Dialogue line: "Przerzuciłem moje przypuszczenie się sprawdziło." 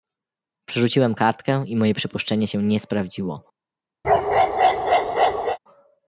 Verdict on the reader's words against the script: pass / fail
fail